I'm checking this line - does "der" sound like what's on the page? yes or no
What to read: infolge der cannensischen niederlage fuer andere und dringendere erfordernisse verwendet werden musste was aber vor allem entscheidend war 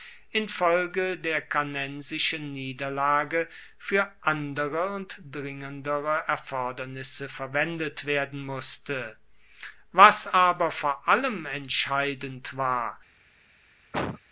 yes